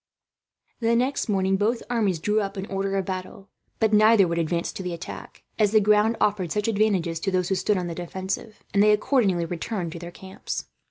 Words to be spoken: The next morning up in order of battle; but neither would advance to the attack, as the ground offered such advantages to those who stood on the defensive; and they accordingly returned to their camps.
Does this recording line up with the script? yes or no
no